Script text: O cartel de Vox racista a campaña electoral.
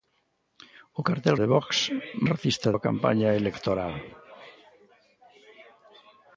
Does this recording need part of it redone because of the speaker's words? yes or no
no